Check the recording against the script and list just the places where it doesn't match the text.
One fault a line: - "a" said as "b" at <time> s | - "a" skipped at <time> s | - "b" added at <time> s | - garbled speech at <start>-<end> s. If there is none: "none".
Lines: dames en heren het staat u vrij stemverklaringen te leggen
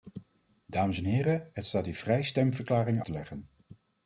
none